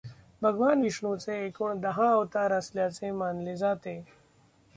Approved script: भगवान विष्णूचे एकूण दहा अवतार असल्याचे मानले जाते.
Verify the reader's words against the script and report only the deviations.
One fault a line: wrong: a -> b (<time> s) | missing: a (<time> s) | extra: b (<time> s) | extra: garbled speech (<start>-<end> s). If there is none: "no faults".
no faults